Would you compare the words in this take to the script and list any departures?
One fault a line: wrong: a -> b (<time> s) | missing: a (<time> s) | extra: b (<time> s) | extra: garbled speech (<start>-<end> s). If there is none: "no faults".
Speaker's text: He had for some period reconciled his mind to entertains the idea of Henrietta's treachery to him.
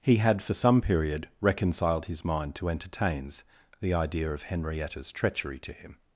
no faults